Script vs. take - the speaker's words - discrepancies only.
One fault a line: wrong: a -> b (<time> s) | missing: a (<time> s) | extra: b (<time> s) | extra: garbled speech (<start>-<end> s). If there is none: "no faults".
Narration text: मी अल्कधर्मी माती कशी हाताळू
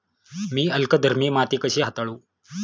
no faults